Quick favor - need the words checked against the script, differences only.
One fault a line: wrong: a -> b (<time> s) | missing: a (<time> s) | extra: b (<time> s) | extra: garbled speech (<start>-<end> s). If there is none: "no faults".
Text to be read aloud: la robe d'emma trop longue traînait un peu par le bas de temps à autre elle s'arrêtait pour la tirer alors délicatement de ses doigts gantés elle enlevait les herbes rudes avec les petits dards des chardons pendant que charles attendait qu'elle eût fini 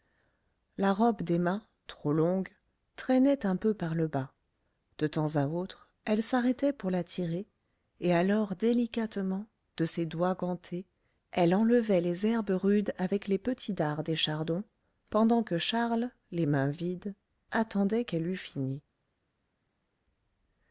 extra: et (8.0 s)
extra: les mains vides (16.3 s)